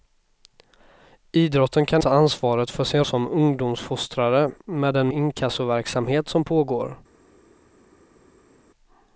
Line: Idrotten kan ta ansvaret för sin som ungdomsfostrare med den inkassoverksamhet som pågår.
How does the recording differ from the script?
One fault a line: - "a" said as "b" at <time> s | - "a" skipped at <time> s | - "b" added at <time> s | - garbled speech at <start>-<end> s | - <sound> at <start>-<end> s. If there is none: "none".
none